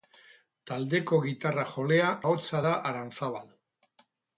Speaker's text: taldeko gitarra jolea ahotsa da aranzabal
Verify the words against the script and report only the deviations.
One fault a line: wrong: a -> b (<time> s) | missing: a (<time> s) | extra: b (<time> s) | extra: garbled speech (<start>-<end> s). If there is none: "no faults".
no faults